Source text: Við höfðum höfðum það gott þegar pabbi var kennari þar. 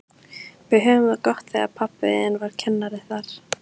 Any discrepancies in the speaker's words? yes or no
yes